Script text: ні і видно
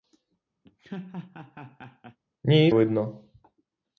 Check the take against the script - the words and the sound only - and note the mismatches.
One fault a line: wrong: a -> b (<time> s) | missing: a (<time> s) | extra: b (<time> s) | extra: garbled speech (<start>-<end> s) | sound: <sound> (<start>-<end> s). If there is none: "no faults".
sound: laugh (0.6-2.2 s)